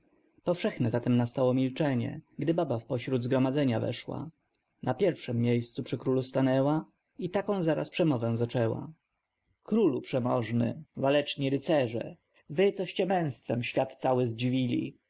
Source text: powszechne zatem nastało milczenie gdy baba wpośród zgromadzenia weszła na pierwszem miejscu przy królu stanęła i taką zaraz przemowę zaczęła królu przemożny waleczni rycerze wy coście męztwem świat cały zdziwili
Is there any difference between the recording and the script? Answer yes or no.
no